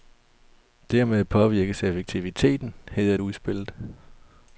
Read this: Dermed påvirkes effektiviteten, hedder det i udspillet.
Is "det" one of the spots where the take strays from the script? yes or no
yes